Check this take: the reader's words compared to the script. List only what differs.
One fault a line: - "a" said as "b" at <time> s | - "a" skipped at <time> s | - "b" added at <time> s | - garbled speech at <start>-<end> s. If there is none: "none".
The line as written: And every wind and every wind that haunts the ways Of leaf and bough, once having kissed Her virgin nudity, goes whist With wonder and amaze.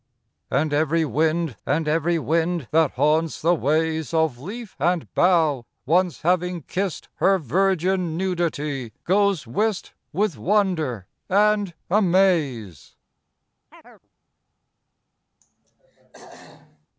none